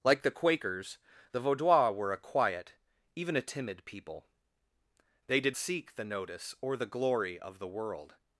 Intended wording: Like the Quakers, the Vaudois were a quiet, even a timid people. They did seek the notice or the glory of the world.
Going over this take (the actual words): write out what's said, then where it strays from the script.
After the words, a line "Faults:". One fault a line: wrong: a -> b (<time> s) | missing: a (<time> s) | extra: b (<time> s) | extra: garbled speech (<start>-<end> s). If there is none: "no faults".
Like the Quakers, the Vaudois were a quiet, even a timid people. They did seek the notice or the glory of the world.
Faults:
no faults